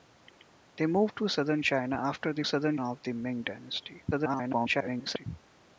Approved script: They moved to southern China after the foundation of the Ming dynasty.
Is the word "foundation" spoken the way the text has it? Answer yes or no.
no